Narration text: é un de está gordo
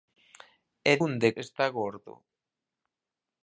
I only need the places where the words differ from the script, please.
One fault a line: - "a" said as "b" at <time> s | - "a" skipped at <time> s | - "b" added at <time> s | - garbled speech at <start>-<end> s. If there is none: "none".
none